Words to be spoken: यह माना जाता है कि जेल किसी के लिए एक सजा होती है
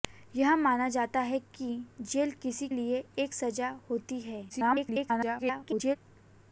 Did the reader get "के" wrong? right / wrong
wrong